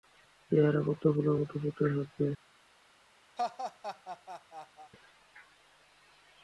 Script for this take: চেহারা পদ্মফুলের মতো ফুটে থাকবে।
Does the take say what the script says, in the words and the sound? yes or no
no